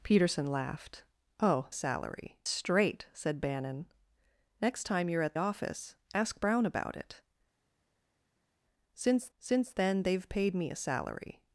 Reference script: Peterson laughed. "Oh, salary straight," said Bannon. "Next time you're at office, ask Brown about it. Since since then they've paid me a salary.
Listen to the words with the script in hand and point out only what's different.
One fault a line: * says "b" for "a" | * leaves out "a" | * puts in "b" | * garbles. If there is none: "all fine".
all fine